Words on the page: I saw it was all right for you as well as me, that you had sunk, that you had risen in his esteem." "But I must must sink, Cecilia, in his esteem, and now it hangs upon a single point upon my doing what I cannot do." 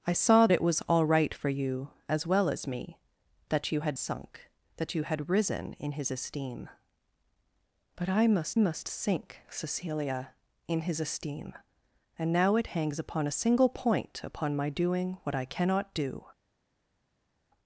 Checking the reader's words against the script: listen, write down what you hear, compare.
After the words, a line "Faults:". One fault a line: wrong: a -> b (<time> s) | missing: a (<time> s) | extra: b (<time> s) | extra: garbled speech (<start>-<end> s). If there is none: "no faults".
I saw it was all right for you as well as me, that you had sunk, that you had risen in his esteem." "But I must must sink, Cecilia, in his esteem, and now it hangs upon a single point upon my doing what I cannot do."
Faults:
no faults